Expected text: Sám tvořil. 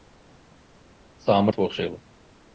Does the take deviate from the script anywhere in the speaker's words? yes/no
no